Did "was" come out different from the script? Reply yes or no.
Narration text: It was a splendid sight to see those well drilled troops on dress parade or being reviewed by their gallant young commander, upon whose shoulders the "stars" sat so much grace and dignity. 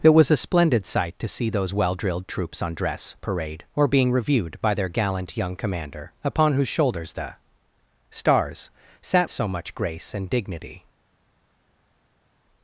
no